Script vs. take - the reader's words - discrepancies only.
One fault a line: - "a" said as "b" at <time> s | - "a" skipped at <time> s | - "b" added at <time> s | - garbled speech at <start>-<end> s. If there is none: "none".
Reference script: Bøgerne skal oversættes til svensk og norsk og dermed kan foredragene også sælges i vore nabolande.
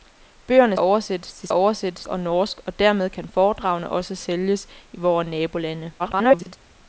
- "skal" skipped at 0.8 s
- "svensk" said as "oversættes" at 1.5 s
- garbled speech at 6.0-6.6 s